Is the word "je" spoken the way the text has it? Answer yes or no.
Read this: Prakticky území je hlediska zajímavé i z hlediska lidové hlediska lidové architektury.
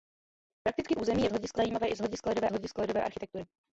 yes